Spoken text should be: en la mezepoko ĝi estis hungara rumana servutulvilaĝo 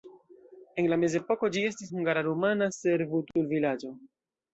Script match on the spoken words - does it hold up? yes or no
yes